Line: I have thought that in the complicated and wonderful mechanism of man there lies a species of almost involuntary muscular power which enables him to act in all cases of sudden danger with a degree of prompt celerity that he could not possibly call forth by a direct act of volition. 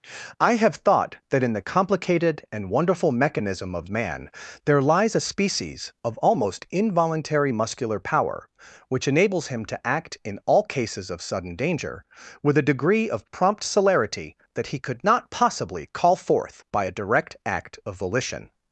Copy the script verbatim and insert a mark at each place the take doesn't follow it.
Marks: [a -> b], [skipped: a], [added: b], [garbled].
I have thought that in the complicated and wonderful mechanism of man there lies a species of almost involuntary muscular power which enables him to act in all cases of sudden danger with a degree of prompt celerity that he could not possibly call forth by a direct act of volition.